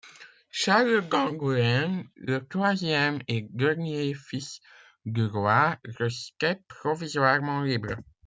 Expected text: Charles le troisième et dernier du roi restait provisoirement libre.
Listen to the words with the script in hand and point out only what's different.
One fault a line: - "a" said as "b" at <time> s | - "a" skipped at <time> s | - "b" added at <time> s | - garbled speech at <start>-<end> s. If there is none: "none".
- "d'Angoulême" added at 1.1 s
- "fils" added at 4.1 s